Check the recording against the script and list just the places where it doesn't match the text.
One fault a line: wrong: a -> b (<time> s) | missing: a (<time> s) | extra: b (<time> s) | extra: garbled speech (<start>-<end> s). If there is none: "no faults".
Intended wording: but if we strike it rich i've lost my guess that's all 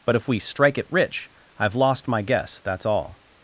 no faults